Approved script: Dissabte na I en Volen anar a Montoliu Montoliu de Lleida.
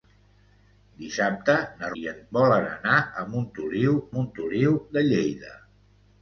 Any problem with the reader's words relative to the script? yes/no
no